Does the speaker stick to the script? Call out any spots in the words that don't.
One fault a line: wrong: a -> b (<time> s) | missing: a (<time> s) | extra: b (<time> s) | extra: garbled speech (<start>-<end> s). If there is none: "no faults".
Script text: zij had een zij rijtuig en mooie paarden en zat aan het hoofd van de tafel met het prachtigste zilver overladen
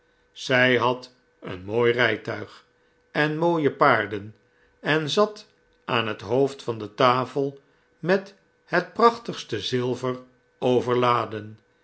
wrong: zij -> mooi (1.6 s)